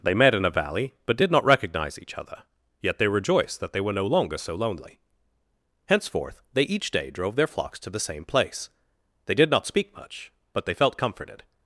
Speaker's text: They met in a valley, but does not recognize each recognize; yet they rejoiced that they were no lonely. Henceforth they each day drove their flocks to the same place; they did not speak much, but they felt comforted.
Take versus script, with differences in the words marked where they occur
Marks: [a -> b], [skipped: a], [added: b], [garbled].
They met in a valley, but [does -> did] not recognize each [recognize; -> other] yet they rejoiced that they were no [added: longer so] lonely. Henceforth they each day drove their flocks to the same place; they did not speak much, but they felt comforted.